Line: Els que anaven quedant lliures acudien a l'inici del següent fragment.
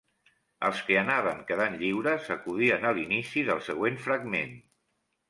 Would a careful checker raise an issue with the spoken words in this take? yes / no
no